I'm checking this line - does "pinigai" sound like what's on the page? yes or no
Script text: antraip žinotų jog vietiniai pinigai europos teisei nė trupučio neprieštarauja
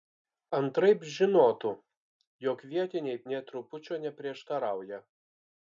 no